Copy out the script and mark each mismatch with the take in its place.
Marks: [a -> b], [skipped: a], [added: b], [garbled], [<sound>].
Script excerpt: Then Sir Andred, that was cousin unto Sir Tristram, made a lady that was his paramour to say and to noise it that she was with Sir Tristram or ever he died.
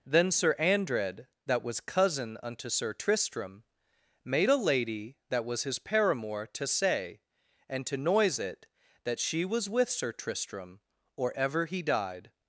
Then Sir Andred, that was cousin unto Sir Tristram, made a lady that was his paramour to say and to noise it that she was with Sir Tristram or ever he died.